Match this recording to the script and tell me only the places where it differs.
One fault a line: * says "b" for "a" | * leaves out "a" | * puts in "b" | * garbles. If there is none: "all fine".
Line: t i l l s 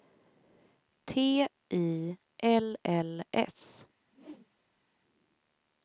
all fine